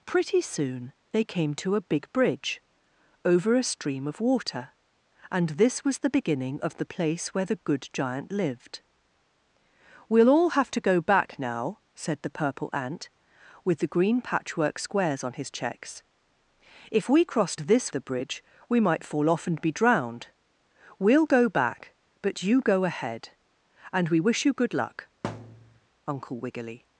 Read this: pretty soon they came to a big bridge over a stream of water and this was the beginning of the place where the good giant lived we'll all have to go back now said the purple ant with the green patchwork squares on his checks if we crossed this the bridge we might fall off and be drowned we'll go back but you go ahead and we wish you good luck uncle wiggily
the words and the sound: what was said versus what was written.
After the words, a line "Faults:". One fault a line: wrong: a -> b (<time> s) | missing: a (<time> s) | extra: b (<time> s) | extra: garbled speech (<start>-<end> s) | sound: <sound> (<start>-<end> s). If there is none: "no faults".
pretty soon they came to a big bridge over a stream of water and this was the beginning of the place where the good giant lived we'll all have to go back now said the purple ant with the green patchwork squares on his checks if we crossed this the bridge we might fall off and be drowned we'll go back but you go ahead and we wish you good luck uncle wiggily
Faults:
sound: thud (25.2-25.8 s)